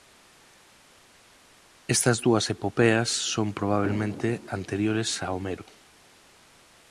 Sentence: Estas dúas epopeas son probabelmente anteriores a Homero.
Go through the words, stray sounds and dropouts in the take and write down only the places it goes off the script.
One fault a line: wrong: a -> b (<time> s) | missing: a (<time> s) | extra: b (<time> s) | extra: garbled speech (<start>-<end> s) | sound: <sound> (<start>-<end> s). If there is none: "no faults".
no faults